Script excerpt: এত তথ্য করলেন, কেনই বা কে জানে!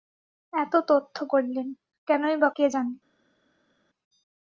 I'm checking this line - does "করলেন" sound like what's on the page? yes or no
yes